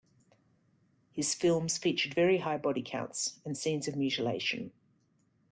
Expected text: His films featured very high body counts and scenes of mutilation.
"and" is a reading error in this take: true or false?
false